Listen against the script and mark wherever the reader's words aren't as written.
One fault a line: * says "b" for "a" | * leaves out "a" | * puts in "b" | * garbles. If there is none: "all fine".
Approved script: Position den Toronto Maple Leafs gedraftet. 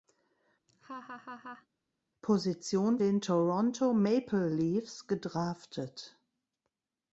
all fine